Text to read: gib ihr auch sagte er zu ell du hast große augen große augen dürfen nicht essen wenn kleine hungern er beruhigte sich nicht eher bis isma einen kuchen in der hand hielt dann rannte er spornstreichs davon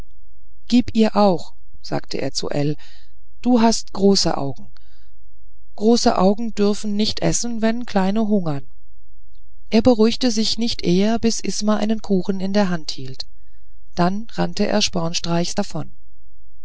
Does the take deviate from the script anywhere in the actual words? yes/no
no